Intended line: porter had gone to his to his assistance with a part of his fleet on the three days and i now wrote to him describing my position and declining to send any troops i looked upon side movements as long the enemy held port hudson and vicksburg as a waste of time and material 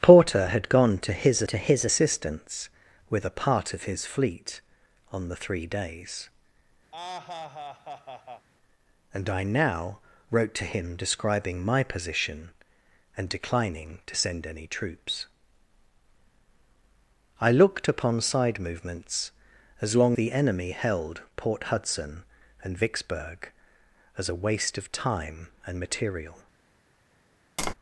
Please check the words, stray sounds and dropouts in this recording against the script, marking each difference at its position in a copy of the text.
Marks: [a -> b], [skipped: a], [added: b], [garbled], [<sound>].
porter had gone to his to his assistance with a part of his fleet on the three days [laugh] and i now wrote to him describing my position and declining to send any troops i looked upon side movements as long the enemy held port hudson and vicksburg as a waste of time and material [tap]